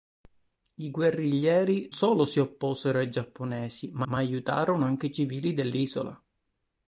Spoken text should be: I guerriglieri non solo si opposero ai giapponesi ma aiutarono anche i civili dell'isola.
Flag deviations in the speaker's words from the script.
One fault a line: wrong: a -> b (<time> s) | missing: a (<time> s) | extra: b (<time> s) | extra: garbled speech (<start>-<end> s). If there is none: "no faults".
missing: non (1.9 s)
extra: ma (4.0 s)